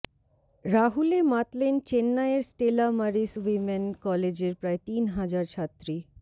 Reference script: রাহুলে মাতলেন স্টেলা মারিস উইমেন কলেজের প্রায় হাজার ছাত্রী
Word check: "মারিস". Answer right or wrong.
right